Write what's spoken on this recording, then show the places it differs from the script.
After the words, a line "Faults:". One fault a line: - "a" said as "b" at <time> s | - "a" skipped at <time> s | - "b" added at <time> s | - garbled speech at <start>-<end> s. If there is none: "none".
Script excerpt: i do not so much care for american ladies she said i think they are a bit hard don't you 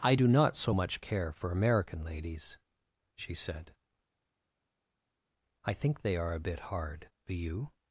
i do not so much care for american ladies she said i think they are a bit hard do you
Faults:
- "don't" said as "do" at 7.2 s